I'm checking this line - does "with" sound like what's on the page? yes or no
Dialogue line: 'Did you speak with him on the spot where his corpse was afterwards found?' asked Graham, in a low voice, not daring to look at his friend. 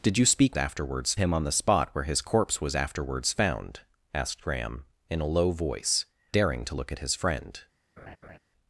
no